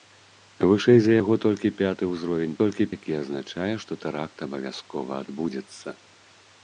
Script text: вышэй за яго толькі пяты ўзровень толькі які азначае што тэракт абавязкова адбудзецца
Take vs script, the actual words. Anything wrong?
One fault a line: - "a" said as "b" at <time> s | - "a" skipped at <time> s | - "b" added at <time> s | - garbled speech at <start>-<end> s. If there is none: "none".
none